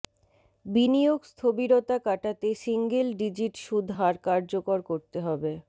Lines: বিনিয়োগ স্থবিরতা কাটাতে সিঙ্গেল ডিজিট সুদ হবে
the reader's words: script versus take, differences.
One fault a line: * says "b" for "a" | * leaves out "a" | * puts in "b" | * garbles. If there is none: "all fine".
* puts in "হার কার্যকর করতে"